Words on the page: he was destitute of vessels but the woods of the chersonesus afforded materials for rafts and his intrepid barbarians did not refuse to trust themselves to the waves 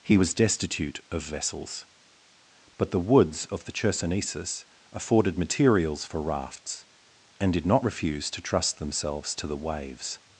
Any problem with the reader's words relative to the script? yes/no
yes